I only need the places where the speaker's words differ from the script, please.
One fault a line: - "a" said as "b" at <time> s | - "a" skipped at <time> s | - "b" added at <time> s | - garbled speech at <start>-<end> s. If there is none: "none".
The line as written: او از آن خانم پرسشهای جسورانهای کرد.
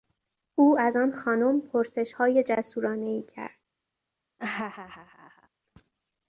none